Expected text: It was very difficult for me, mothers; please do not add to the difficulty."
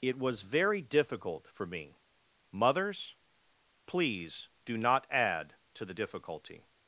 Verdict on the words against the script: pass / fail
pass